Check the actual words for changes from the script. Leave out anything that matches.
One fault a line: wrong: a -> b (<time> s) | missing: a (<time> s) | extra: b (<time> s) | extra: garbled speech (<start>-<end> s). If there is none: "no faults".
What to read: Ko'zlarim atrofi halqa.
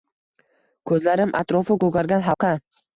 extra: ko'kargan (1.9 s)